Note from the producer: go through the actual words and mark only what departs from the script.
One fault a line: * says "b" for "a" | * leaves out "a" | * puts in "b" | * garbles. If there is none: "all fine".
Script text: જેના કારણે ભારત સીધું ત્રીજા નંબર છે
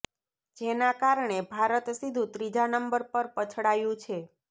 * puts in "પર પછડાયું"